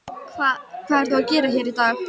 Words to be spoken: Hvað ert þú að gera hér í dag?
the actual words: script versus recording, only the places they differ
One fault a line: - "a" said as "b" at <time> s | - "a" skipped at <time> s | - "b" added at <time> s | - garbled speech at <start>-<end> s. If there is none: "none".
none